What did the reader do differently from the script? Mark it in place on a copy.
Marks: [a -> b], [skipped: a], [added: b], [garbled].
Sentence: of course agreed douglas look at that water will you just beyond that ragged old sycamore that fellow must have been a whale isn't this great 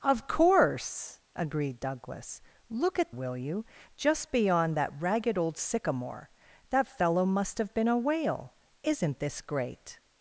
of course agreed douglas look at [skipped: that water] will you just beyond that ragged old sycamore that fellow must have been a whale isn't this great